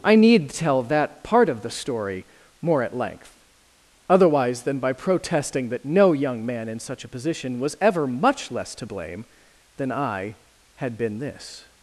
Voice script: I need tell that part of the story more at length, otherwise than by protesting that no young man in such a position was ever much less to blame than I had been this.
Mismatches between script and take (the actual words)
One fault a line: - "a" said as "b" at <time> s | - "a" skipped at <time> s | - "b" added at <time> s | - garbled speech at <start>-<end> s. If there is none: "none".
none